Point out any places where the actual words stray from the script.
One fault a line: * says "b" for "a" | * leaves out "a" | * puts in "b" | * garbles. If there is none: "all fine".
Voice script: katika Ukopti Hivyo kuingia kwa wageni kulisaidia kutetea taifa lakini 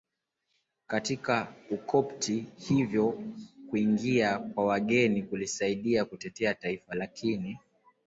all fine